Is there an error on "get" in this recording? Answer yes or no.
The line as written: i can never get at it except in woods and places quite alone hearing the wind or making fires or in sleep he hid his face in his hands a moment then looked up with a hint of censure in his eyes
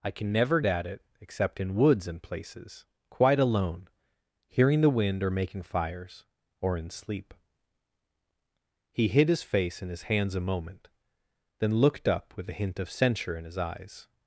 yes